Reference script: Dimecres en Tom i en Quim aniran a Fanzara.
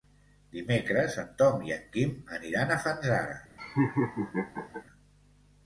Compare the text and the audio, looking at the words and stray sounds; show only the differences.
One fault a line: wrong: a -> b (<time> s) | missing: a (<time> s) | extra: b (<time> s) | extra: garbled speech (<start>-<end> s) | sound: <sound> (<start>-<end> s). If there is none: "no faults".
sound: laugh (3.6-4.8 s)